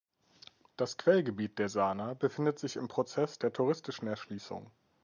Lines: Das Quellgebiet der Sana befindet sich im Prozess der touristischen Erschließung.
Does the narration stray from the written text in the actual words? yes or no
no